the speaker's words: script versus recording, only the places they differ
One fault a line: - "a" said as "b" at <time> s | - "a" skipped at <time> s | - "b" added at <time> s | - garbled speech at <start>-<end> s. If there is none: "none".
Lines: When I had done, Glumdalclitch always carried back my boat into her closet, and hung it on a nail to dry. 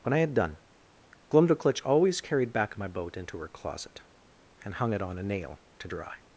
none